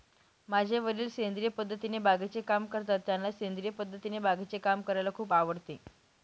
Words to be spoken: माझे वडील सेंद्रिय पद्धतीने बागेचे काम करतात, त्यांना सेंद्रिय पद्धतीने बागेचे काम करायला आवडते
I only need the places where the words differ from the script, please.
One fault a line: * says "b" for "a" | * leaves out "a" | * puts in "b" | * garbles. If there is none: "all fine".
* puts in "खूप"